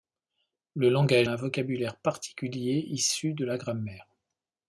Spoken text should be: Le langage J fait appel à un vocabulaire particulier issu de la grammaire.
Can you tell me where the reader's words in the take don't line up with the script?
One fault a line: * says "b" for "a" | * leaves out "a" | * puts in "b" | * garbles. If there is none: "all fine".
* leaves out "J fait appel"